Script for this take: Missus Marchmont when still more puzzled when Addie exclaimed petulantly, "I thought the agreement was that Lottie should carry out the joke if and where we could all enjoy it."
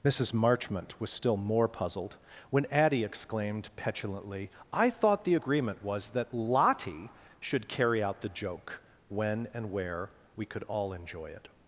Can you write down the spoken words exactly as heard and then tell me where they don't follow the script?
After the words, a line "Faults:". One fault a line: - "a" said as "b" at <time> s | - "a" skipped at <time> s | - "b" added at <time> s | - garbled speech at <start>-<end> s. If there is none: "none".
Missus Marchmont was still more puzzled when Addie exclaimed petulantly, "I thought the agreement was that Lottie should carry out the joke when and where we could all enjoy it."
Faults:
- "when" said as "was" at 1.0 s
- "if" said as "when" at 9.1 s